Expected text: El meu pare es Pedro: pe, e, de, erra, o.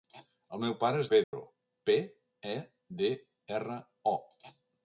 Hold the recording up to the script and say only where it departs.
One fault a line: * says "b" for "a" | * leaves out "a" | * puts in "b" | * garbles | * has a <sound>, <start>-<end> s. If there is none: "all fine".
* has a dropout, 1.2-1.3 s